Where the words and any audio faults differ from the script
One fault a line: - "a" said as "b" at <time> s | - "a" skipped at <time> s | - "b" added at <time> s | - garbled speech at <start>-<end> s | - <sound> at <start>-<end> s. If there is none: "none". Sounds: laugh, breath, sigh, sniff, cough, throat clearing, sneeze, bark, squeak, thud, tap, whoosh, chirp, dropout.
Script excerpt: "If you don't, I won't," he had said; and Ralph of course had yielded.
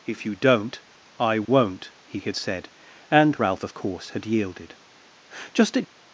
- dropout at 1.4-1.5 s
- "Just at" added at 5.5 s